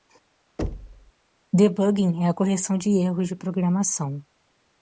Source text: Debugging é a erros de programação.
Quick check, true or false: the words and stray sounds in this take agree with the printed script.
false